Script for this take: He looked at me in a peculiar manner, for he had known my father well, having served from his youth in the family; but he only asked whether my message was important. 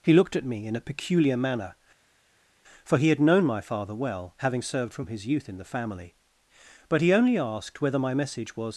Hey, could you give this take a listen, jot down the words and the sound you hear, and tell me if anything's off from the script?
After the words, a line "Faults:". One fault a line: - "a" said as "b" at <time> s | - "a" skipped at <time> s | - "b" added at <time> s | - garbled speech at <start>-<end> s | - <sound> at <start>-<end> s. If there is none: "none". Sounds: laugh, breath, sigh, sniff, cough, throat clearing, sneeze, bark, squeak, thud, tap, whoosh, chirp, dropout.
He looked at me in a peculiar manner, for he had known my father well, having served from his youth in the family; but he only asked whether my message was.
Faults:
- "important" skipped at 8.7 s